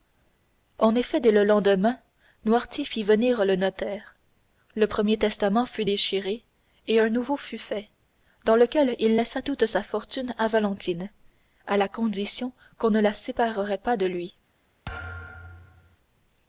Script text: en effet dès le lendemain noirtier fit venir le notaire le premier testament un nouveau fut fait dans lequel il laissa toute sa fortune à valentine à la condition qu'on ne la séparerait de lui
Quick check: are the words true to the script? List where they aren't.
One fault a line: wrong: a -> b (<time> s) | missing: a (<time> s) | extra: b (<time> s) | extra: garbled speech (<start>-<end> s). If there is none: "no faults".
extra: fut déchiré et (5.7 s)
extra: pas (13.8 s)